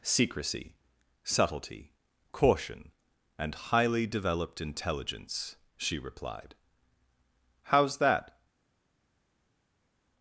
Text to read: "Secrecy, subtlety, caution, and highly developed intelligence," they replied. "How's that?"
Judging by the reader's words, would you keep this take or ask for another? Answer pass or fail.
fail